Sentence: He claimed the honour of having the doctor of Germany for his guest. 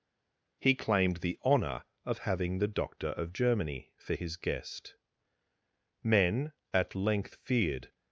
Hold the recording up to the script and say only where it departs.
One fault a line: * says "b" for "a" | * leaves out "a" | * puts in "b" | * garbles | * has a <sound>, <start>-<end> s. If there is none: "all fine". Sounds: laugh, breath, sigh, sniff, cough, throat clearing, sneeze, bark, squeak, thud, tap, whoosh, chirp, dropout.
* puts in "Men at length feared"